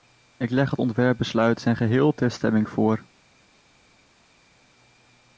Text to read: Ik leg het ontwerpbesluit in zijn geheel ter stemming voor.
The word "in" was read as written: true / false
false